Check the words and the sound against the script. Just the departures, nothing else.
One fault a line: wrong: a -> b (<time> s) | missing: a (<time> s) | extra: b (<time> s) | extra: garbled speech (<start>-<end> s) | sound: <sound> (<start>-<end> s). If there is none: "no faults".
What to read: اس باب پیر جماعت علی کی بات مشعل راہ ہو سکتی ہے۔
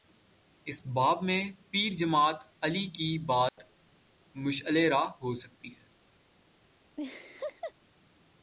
extra: میں (1.2 s)
sound: dropout (3.5-3.6 s)
sound: laugh (7.0-7.7 s)